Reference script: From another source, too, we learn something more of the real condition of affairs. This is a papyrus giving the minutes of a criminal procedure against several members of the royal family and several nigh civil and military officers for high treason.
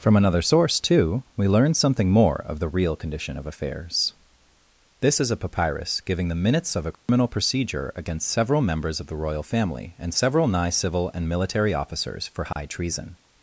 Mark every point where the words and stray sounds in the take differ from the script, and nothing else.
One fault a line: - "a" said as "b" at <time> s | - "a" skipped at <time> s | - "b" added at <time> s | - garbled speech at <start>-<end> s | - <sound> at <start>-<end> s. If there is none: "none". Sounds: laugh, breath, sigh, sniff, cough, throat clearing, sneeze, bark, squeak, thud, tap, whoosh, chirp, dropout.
- dropout at 6.9-7.1 s
- dropout at 12.5-12.6 s